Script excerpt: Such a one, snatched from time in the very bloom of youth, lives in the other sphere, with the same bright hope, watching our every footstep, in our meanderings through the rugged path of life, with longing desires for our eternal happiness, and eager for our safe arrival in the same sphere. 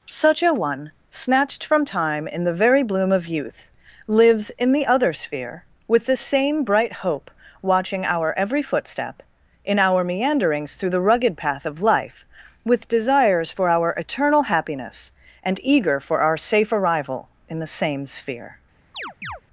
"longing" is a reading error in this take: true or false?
true